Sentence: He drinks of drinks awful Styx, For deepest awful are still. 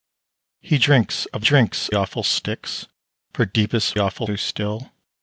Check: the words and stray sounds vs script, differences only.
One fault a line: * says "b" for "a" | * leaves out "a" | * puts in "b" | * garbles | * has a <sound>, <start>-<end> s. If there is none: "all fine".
all fine